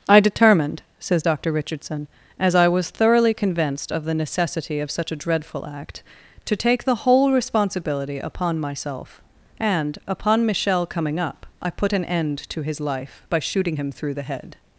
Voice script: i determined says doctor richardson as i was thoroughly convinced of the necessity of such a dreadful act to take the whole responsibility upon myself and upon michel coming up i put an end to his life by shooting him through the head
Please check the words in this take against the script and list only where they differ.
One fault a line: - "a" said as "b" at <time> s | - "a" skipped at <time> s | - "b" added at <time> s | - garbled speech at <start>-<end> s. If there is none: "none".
none